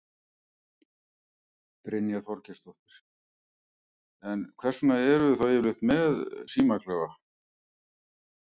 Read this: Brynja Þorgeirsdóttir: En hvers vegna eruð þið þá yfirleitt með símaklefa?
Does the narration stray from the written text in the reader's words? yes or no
no